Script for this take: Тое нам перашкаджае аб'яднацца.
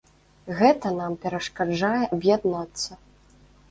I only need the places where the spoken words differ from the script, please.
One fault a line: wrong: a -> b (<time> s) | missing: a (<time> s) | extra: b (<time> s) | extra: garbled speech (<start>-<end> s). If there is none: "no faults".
wrong: Тое -> Гэта (0.6 s)